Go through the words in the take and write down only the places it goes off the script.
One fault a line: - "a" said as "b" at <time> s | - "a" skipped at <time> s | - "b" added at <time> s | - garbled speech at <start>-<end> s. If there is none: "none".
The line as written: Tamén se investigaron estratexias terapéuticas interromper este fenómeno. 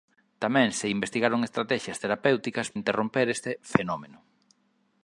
none